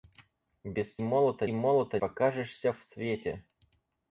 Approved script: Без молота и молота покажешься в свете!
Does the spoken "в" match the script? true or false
true